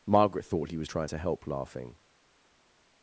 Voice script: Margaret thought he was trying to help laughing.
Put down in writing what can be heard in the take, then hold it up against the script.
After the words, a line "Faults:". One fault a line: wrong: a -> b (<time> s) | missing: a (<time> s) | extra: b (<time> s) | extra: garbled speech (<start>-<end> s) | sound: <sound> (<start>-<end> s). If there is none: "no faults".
Margaret thought he was trying to help laughing.
Faults:
no faults